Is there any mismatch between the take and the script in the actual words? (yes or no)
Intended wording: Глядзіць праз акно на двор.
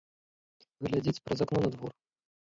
no